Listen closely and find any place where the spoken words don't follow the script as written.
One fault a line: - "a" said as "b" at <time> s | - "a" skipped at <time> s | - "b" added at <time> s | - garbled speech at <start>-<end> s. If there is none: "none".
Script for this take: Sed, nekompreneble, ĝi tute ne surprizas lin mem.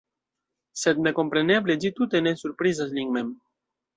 none